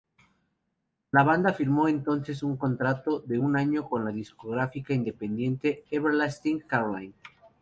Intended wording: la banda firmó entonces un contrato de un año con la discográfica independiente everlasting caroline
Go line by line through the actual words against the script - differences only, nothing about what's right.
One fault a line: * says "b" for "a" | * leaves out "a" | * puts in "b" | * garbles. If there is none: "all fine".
all fine